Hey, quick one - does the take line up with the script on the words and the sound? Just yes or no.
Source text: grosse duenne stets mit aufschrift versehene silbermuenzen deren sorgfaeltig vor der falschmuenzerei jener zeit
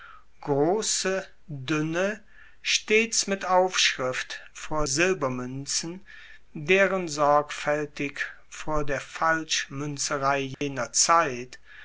no